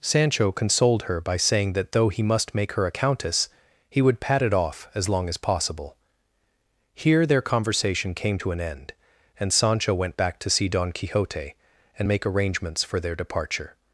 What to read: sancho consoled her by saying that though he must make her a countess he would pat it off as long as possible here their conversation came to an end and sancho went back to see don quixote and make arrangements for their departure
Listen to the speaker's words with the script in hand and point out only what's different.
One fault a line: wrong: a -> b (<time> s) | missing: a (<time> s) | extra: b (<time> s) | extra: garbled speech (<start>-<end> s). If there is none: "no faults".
no faults